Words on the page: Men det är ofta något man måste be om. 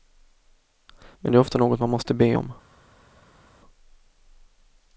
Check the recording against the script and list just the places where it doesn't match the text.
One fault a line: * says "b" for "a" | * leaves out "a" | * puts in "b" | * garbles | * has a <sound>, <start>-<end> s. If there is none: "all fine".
all fine